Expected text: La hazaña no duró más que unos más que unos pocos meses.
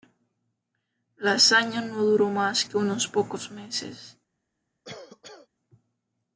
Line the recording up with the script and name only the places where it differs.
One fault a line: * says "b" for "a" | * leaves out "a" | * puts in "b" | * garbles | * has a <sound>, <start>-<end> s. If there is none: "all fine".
* leaves out "más que unos"
* has a cough, 4.8-5.5 s